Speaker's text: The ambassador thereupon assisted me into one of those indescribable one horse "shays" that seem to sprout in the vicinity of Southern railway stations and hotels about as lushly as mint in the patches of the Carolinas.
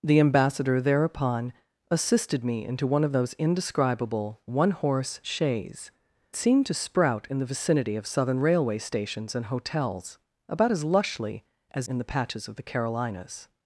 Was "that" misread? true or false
true